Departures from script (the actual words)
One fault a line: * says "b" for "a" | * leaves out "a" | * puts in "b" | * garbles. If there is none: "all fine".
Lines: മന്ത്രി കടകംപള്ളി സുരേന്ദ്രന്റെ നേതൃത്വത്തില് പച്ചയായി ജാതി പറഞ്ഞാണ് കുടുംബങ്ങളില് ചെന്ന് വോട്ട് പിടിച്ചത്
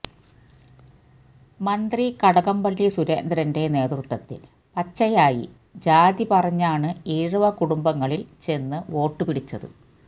* puts in "ഈഴവ"